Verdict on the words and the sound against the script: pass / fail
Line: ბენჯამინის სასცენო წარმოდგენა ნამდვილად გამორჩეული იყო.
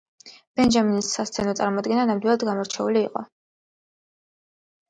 pass